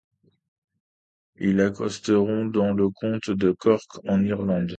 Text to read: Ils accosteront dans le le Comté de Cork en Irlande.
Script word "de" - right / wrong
right